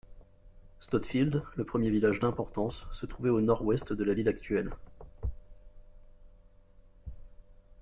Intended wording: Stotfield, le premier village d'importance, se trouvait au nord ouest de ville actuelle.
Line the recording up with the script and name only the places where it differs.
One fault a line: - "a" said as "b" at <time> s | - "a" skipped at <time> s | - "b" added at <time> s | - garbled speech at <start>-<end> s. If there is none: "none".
- "la" added at 4.0 s